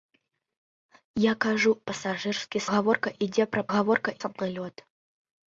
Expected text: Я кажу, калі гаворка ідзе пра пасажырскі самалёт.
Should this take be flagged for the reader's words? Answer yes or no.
yes